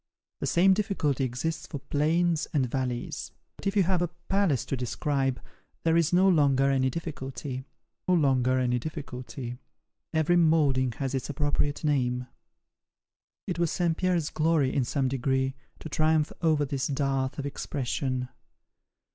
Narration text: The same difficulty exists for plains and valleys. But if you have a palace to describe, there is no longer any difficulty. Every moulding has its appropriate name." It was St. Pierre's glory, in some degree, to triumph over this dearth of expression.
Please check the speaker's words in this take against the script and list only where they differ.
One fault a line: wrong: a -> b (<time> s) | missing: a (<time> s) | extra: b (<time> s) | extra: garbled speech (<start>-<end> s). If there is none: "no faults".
extra: longer any difficulty (8.1 s)